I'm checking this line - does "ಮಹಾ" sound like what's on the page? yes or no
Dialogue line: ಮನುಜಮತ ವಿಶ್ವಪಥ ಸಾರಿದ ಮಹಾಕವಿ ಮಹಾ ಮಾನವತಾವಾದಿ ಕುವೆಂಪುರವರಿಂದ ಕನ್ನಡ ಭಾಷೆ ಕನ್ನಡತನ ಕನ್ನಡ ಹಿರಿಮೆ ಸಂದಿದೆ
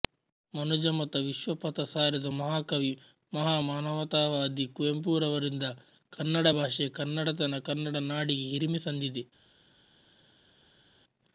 yes